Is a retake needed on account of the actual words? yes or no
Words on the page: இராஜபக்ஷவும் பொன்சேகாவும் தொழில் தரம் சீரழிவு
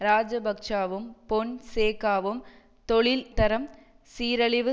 no